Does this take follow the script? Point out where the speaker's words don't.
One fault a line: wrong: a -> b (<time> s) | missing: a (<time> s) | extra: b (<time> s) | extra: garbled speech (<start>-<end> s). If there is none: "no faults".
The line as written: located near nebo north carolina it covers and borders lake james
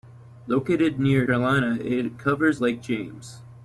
missing: nebo north (1.3 s)
missing: and borders (2.6 s)